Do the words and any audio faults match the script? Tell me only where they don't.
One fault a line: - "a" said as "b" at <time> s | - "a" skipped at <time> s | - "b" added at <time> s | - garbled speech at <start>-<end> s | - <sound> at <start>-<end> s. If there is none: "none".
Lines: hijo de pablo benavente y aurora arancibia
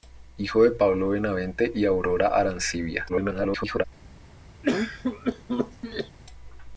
- garbled speech at 3.1-3.8 s
- cough at 4.6-6.2 s